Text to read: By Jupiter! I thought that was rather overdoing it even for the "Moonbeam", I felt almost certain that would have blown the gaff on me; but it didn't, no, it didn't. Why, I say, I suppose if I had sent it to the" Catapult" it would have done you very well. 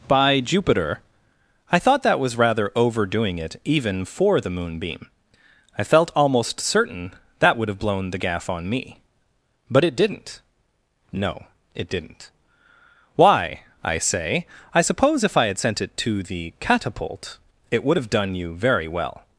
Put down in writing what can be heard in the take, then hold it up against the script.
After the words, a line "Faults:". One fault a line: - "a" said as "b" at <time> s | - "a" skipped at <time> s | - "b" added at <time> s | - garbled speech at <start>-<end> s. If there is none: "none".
By Jupiter! I thought that was rather overdoing it even for the "Moonbeam", I felt almost certain that would have blown the gaff on me; but it didn't, no, it didn't. Why, I say, I suppose if I had sent it to the" Catapult" it would have done you very well.
Faults:
none